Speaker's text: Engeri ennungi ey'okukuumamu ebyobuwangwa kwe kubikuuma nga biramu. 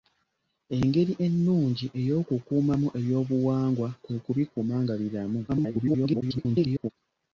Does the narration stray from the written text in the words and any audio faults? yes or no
yes